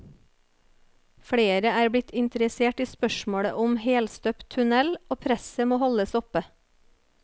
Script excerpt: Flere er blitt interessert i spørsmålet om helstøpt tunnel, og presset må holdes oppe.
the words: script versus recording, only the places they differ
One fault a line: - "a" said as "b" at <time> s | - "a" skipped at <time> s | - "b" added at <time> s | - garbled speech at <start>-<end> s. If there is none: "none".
none